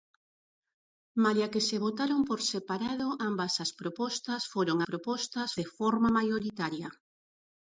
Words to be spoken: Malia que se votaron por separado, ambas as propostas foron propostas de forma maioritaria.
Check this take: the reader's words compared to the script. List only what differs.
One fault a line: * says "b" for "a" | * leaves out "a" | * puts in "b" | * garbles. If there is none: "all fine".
all fine